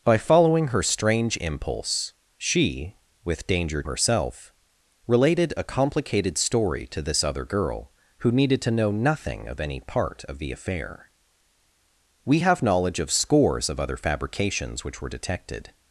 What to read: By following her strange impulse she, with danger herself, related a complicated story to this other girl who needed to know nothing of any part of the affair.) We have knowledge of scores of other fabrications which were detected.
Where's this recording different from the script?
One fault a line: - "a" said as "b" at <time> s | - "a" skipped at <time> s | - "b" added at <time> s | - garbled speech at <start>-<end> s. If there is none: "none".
none